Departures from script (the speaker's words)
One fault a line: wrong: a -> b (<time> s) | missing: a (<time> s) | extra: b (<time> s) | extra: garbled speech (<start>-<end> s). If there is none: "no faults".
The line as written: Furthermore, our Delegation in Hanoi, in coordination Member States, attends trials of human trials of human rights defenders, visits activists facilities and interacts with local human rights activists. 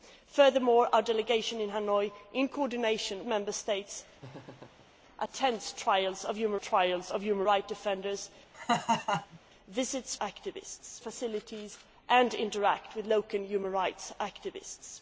no faults